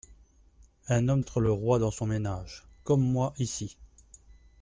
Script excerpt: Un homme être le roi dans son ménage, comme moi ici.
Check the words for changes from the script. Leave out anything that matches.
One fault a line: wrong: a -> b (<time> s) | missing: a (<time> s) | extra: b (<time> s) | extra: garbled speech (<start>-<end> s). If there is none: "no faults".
no faults